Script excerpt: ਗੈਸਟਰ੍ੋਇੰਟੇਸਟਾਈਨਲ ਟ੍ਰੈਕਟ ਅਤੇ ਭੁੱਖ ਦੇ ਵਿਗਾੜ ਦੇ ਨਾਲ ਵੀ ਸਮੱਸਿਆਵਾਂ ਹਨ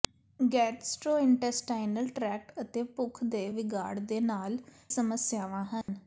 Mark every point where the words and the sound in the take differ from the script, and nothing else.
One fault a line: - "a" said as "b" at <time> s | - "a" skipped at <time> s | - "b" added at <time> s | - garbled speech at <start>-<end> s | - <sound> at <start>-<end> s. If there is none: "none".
- "ਵੀ" skipped at 4.6 s
- dropout at 5.8-5.9 s